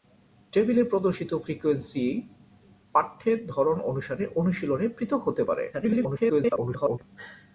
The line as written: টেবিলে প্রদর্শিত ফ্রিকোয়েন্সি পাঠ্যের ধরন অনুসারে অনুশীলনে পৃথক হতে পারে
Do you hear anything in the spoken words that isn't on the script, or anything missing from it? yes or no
yes